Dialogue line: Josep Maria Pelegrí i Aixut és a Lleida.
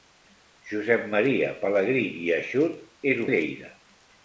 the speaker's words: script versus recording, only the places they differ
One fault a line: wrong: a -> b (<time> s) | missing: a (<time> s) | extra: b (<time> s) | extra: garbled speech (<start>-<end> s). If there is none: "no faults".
no faults